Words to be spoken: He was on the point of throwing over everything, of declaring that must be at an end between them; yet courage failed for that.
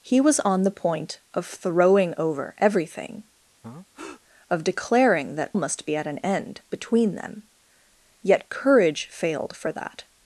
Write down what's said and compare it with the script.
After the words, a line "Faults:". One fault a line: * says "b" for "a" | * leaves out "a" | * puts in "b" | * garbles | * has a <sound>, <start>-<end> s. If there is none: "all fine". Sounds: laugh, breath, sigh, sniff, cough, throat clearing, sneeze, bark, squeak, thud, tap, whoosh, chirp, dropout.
He was on the point of throwing over everything, of declaring that must be at an end between them; yet courage failed for that.
Faults:
* has a breath, 3.6-4.2 s